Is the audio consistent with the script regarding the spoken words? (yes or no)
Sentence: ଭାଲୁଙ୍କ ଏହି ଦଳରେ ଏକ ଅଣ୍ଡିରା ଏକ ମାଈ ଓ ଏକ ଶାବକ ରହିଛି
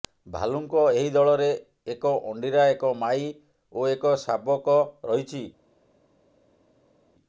yes